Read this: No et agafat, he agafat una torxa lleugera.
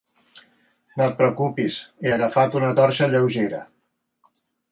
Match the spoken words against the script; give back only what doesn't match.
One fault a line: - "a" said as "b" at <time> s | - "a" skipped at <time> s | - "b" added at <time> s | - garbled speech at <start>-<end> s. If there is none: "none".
- "agafat" said as "preocupis" at 1.2 s